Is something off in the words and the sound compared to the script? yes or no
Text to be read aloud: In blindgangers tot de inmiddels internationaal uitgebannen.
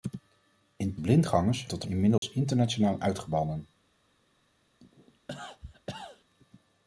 yes